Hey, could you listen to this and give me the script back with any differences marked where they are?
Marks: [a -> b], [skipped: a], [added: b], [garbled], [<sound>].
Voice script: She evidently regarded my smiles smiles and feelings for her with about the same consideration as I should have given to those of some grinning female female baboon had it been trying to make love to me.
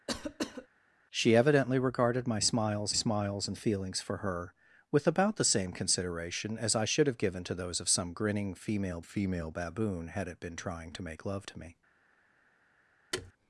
[cough] She evidently regarded my smiles smiles and feelings for her with about the same consideration as I should have given to those of some grinning female female baboon had it been trying to make love to me. [thud]